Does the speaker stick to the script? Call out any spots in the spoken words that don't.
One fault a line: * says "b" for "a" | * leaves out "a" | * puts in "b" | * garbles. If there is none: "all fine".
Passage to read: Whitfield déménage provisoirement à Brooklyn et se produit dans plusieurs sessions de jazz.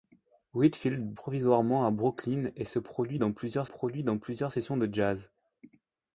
* leaves out "déménage"
* puts in "produit dans plusieurs"